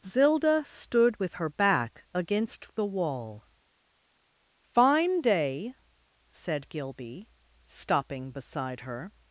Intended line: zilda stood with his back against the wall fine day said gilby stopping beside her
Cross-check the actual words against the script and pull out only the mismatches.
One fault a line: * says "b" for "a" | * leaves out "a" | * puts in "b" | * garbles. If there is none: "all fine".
* says "her" for "his"